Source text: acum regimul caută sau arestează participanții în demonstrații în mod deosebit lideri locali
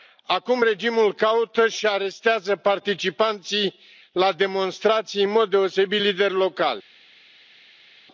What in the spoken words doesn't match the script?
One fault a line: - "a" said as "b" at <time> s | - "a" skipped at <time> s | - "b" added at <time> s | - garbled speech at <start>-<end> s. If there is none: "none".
- "sau" said as "și" at 1.7 s
- "în" said as "la" at 4.1 s